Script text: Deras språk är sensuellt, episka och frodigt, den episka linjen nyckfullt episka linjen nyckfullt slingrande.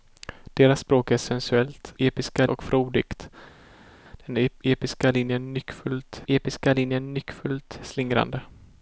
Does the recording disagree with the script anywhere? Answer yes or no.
no